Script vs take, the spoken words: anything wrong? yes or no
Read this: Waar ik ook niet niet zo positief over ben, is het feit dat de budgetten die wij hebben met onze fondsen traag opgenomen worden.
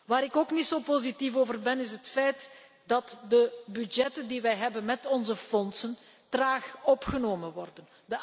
yes